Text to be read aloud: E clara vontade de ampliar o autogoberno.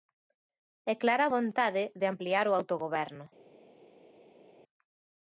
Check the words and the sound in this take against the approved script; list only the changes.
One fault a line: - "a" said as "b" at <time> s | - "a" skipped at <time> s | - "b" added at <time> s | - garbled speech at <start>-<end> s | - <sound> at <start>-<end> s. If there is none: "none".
none